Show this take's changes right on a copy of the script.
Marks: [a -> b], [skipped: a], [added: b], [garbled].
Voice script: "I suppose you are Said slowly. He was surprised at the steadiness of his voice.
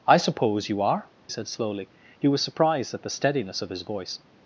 "I suppose you are Said slowly. He was surprised at the steadiness of his voice.